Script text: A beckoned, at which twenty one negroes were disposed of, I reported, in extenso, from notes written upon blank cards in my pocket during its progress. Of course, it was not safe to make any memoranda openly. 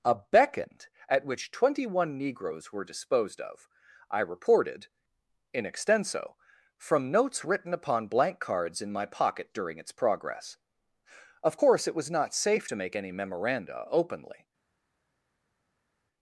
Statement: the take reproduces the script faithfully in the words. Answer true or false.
true